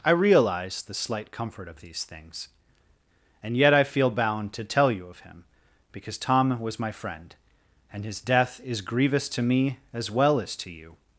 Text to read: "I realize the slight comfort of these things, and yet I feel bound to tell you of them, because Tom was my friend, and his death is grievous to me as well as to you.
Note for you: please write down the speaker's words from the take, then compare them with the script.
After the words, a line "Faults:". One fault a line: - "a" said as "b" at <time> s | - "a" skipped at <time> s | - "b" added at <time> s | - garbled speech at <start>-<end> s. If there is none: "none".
"I realize the slight comfort of these things, and yet I feel bound to tell you of him, because Tom was my friend, and his death is grievous to me as well as to you.
Faults:
- "them" said as "him" at 5.2 s